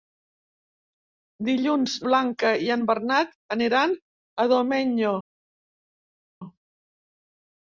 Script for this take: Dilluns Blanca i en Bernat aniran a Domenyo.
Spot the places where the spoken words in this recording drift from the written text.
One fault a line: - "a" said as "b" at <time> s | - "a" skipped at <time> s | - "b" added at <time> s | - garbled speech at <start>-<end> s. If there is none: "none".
none